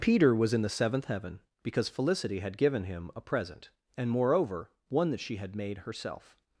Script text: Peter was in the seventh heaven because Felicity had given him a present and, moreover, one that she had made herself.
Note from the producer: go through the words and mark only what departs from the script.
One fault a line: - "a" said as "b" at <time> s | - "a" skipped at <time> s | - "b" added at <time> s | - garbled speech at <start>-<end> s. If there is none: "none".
none